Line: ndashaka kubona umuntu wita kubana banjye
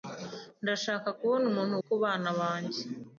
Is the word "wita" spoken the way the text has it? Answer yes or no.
no